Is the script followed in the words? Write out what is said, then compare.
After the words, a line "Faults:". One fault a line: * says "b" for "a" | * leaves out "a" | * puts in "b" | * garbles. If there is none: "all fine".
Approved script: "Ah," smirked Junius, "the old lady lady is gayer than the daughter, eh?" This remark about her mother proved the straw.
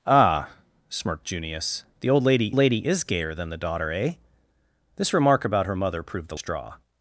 "Ah," smirked Junius, "the old lady lady is gayer than the daughter, eh?" This remark about her mother proved the straw.
Faults:
all fine